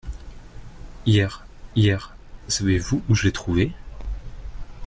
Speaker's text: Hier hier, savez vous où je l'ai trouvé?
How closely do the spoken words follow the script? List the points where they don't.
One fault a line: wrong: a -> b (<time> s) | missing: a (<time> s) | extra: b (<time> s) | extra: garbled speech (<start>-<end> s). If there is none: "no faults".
no faults